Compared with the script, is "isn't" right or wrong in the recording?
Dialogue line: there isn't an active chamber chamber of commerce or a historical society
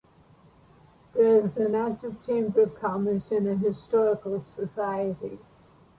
wrong